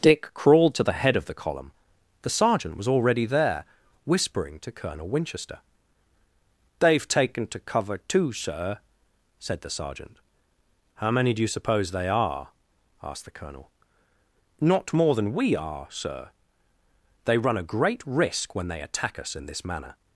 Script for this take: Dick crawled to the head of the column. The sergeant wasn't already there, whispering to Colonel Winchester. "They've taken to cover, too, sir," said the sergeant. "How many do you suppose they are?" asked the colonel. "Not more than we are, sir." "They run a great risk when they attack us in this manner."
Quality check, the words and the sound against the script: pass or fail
fail